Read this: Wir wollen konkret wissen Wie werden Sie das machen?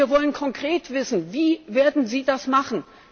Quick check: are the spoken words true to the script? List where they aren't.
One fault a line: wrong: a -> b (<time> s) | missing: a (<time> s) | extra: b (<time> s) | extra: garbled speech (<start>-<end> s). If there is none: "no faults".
no faults